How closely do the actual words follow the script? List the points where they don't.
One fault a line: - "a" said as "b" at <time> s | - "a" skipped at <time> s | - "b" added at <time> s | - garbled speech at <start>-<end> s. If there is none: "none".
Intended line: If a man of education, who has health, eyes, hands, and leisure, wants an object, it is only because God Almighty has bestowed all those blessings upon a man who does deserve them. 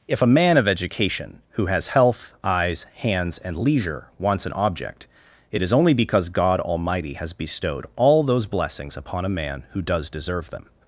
none